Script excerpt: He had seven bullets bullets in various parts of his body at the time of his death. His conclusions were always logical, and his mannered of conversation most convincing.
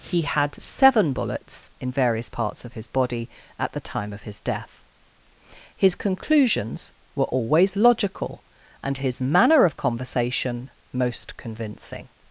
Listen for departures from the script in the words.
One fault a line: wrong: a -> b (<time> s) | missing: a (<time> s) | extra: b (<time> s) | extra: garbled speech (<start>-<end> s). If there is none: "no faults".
missing: bullets (1.7 s)
wrong: mannered -> manner (9.2 s)